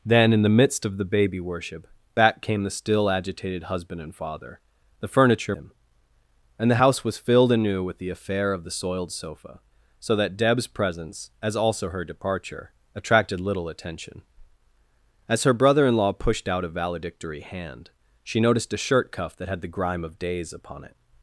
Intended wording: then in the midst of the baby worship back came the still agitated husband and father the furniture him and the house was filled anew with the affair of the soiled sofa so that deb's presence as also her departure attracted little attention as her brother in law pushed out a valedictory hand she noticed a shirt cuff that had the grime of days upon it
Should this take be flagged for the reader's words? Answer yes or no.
no